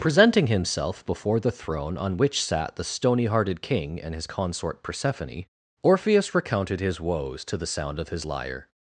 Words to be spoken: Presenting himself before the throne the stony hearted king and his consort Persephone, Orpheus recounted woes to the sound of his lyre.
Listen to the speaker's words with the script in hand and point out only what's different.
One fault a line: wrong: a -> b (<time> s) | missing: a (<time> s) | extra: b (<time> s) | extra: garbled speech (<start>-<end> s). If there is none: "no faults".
extra: on which sat (1.9 s)
extra: his (6.8 s)